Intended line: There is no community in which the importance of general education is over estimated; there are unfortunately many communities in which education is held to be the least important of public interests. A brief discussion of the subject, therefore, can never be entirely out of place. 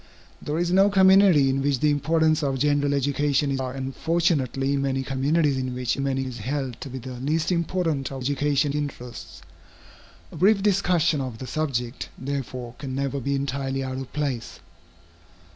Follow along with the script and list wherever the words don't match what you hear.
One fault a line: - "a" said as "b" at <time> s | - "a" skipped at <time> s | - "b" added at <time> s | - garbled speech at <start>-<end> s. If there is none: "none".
- "over estimated there" skipped at 3.6 s
- "education" said as "many" at 6.0 s
- "public" said as "education" at 8.2 s